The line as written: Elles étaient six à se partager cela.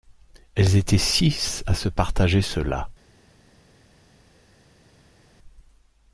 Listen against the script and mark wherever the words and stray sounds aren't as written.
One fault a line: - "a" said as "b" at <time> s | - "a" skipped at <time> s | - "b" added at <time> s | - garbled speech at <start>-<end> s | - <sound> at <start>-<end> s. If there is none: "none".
none